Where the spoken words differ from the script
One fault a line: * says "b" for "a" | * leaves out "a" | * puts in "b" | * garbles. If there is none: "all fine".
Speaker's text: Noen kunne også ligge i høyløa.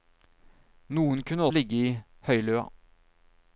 * leaves out "også"